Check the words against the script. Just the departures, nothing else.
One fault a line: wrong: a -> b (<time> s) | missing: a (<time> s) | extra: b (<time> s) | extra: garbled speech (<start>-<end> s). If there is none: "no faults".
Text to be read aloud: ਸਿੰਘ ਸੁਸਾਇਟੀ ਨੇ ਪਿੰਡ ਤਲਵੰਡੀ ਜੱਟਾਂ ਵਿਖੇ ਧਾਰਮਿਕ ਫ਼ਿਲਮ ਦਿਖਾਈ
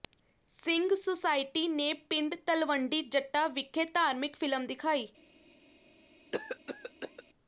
no faults